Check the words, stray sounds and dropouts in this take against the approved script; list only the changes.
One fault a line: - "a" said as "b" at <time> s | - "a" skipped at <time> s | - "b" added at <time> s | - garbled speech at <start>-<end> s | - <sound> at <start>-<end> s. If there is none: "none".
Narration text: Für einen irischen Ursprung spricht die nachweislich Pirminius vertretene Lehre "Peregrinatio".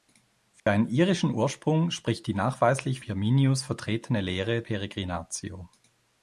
- dropout at 0.6-0.7 s